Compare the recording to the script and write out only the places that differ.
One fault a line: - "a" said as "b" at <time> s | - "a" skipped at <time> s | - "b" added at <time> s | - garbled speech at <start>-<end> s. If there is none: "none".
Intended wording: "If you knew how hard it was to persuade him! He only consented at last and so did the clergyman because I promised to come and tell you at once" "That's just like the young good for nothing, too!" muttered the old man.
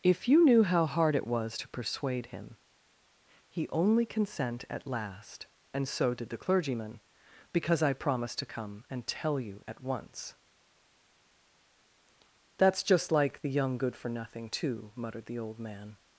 - "consented" said as "consent" at 4.0 s